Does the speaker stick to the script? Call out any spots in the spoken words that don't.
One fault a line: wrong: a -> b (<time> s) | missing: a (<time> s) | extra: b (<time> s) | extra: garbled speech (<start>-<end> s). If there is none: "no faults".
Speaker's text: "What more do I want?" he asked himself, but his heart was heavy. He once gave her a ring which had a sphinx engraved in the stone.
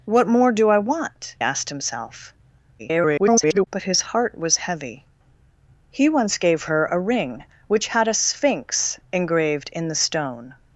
missing: he (1.4 s)
extra: garbled speech (2.8-3.7 s)